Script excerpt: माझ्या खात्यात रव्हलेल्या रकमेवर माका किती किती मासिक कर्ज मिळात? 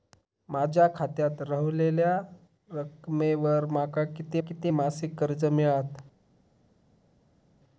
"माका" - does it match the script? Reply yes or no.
yes